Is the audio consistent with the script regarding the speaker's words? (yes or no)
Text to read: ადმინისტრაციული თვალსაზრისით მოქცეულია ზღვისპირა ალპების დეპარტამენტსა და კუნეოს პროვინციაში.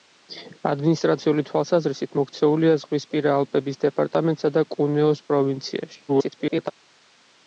no